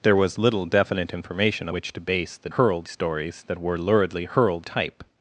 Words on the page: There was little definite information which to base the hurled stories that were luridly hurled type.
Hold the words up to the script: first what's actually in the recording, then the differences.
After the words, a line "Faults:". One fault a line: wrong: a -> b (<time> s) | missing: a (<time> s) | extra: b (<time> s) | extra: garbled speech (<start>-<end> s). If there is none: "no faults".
There was little definite information which to base the hurled stories that were luridly hurled type.
Faults:
no faults